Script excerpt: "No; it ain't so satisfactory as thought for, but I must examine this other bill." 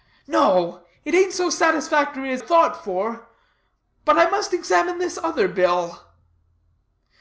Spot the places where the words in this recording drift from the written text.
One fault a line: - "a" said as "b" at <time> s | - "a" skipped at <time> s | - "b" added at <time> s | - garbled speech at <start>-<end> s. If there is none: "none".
none